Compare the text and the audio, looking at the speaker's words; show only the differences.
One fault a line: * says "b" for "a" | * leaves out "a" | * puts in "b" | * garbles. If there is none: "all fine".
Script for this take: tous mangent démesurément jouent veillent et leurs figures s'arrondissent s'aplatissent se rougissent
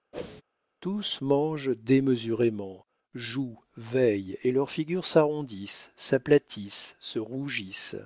all fine